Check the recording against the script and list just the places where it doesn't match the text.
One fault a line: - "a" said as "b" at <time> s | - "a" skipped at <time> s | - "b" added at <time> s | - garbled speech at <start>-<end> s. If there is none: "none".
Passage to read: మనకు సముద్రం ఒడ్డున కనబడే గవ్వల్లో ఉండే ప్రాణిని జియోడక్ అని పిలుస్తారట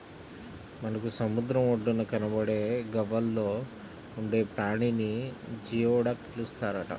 - "అని" skipped at 6.2 s